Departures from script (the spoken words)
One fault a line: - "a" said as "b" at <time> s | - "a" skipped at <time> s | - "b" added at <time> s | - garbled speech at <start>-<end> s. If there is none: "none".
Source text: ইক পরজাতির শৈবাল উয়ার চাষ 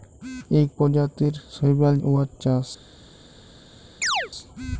none